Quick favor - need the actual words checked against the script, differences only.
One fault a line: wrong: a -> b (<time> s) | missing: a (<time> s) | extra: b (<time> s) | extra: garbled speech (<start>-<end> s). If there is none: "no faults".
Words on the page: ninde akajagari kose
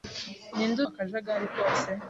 no faults